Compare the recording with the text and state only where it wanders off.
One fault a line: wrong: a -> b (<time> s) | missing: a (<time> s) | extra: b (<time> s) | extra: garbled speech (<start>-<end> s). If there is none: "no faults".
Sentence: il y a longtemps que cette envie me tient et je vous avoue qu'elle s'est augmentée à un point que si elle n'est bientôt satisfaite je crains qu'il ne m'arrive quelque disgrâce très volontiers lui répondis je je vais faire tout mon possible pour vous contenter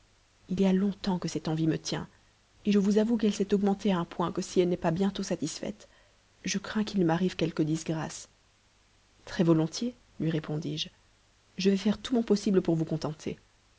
extra: pas (4.8 s)